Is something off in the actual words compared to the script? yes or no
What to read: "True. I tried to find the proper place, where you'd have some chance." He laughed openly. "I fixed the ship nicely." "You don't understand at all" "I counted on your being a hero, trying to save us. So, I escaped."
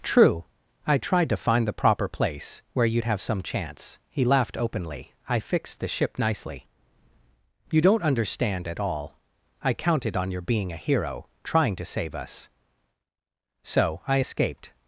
no